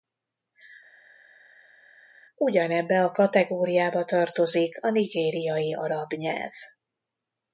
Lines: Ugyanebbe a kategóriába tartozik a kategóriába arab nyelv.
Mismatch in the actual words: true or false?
true